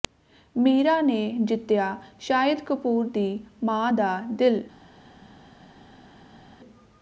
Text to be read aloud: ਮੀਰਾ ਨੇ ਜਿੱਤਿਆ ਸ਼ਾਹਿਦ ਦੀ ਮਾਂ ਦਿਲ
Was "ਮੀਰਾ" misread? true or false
false